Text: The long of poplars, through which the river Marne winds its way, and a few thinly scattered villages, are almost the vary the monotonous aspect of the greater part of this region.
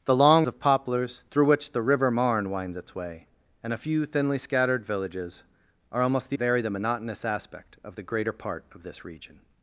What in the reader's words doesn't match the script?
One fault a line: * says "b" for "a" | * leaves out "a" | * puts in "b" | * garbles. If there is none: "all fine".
all fine